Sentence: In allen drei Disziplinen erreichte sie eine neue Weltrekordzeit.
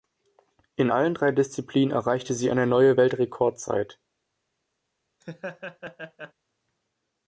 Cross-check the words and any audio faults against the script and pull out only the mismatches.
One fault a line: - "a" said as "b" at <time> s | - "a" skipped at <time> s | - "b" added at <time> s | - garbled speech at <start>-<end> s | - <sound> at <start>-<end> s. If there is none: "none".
- laugh at 5.2-6.3 s